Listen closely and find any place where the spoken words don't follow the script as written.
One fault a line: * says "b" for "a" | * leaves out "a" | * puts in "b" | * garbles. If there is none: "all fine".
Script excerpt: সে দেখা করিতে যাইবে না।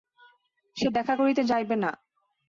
all fine